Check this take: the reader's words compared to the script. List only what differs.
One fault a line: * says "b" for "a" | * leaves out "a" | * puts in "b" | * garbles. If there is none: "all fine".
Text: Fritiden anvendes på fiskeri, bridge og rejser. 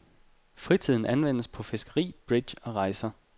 all fine